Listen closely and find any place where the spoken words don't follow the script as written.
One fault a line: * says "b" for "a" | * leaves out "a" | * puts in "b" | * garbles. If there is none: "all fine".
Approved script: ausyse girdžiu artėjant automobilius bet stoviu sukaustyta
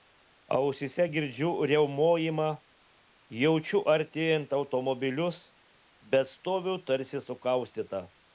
* puts in "riaumojimą jaučiu"
* puts in "tarsi"